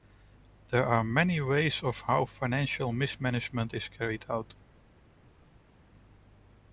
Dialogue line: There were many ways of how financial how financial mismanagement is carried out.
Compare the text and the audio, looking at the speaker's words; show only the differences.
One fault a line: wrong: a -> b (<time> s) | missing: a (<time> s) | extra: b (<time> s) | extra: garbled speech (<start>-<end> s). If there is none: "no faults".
wrong: were -> are (0.8 s)
missing: how financial (2.9 s)